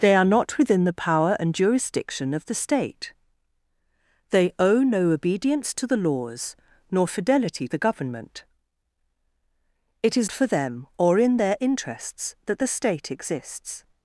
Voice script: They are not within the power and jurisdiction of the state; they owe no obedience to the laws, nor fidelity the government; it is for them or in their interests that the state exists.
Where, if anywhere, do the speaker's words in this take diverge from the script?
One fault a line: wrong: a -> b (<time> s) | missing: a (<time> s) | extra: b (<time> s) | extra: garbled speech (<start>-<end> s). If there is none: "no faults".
no faults